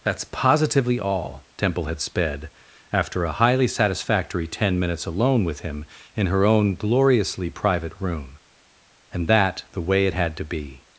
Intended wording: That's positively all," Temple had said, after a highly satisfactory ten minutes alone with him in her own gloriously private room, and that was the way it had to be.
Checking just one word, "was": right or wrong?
wrong